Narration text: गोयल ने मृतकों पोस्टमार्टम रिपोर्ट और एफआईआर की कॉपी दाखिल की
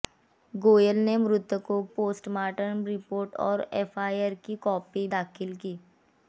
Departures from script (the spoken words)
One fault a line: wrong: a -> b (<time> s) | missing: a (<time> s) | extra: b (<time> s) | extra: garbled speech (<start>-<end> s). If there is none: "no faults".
no faults